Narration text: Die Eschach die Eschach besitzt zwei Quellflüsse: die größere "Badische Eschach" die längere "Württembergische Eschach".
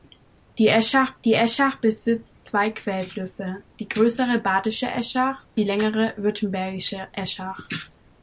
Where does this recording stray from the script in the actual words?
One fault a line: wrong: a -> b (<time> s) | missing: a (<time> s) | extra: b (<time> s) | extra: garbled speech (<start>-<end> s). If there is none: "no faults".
no faults